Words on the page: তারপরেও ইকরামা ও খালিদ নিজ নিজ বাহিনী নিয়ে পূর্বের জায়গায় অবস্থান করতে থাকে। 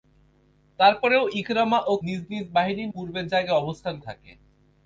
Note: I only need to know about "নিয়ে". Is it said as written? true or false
false